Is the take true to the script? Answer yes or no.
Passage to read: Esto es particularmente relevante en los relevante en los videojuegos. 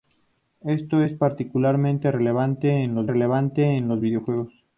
yes